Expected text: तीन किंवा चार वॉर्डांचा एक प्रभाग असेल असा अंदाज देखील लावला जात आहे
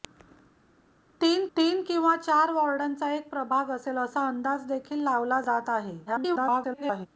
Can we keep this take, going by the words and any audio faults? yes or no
no